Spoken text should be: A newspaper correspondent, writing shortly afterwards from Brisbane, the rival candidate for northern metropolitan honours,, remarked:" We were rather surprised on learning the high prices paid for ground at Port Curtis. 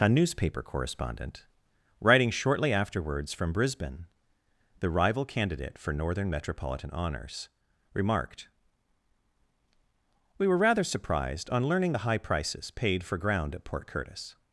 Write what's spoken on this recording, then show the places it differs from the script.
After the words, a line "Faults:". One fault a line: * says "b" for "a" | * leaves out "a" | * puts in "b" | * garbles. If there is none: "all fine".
A newspaper correspondent, writing shortly afterwards from Brisbane, the rival candidate for northern metropolitan honours,, remarked:" We were rather surprised on learning the high prices paid for ground at Port Curtis.
Faults:
all fine